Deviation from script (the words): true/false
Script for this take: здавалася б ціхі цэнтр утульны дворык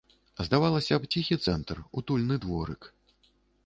false